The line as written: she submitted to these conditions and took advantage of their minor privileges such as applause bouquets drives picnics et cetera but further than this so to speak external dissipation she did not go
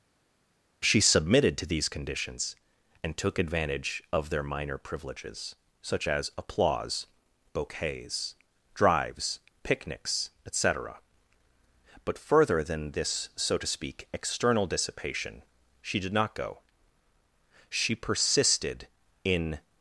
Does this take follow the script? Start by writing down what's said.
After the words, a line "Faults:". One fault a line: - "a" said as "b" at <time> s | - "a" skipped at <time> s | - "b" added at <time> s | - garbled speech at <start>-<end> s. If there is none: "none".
she submitted to these conditions and took advantage of their minor privileges such as applause bouquets drives picnics et cetera but further than this so to speak external dissipation she did not go she persisted in
Faults:
- "she persisted in" added at 17.7 s